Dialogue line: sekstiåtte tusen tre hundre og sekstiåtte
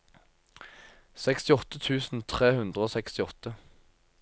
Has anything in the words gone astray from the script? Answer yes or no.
no